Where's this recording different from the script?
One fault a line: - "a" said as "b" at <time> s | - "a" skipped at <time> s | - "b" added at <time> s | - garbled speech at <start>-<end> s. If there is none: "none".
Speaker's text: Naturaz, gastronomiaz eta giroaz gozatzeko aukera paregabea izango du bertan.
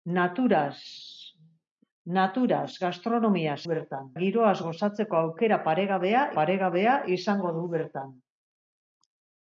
- "eta" said as "bertan" at 3.7 s
- "paregabea" added at 6.4 s